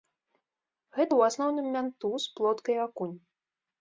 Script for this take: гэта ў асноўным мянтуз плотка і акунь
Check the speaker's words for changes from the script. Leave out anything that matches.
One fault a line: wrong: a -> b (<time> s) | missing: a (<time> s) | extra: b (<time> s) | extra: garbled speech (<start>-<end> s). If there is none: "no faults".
no faults